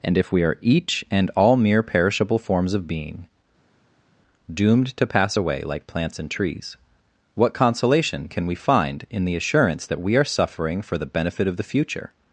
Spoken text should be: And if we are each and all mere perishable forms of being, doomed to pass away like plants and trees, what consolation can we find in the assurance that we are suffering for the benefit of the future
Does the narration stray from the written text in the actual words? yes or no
no